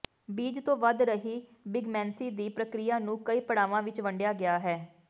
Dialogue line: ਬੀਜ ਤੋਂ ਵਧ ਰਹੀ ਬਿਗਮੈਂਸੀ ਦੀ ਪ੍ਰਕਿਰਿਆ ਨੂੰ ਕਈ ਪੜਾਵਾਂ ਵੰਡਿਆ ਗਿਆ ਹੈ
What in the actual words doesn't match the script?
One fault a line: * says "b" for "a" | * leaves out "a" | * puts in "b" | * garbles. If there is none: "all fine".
* puts in "ਵਿੱਚ"